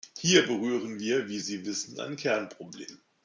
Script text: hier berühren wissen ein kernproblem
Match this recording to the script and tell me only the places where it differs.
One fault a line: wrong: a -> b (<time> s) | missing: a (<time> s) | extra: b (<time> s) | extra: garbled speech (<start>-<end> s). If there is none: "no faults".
extra: wir wie sie (1.0 s)